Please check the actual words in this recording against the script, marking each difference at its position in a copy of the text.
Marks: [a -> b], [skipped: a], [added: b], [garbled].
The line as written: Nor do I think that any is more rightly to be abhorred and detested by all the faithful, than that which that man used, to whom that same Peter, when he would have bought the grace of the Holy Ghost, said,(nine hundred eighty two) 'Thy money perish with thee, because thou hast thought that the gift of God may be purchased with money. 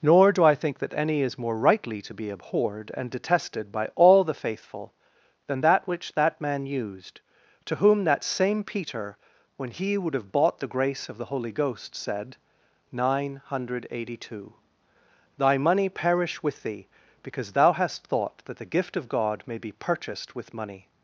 Nor do I think that any is more rightly to be abhorred and detested by all the faithful, than that which that man used, to whom that same Peter, when he would have bought the grace of the Holy Ghost, said,(nine hundred eighty two) 'Thy money perish with thee, because thou hast thought that the gift of God may be purchased with money.